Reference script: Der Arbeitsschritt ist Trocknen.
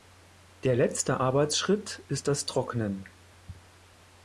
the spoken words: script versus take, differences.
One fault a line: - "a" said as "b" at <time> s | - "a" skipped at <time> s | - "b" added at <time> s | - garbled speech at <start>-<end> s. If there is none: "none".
- "letzte" added at 0.8 s
- "das" added at 2.3 s